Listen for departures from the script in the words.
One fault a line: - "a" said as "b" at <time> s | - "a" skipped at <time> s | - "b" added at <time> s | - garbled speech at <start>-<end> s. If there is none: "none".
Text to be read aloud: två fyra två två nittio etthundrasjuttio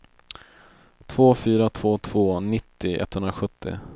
none